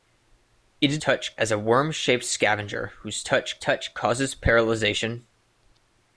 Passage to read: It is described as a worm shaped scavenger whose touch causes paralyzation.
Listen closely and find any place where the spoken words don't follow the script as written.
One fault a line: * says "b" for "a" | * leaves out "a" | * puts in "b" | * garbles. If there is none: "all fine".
* says "touch" for "described"
* puts in "touch"